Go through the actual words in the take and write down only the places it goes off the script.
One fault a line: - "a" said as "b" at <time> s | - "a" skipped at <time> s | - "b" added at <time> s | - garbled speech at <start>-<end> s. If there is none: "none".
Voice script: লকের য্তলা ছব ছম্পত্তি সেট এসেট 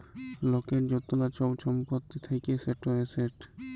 - "থ্যাকে" added at 2.2 s